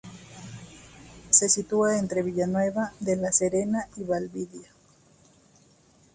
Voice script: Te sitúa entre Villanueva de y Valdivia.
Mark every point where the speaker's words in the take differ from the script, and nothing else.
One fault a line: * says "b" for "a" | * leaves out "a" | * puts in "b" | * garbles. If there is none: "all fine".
* says "Se" for "Te"
* puts in "la Serena"